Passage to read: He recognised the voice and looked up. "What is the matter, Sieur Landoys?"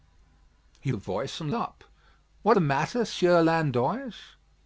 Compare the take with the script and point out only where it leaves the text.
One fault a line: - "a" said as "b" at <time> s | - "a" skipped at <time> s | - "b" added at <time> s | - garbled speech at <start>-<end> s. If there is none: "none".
- "recognised" skipped at 0.9 s
- "looked" skipped at 1.5 s
- "is" skipped at 2.6 s